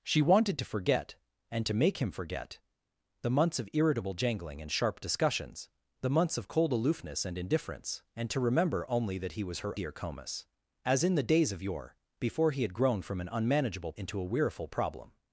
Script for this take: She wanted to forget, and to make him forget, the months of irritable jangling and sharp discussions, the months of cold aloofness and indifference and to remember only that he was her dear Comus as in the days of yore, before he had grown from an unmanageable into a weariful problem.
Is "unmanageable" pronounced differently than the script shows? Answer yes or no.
no